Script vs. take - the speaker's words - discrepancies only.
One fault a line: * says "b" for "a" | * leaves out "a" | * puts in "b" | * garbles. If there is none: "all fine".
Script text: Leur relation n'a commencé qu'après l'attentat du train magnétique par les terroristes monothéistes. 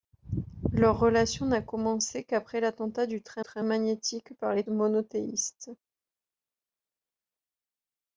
* puts in "train"
* leaves out "terroristes"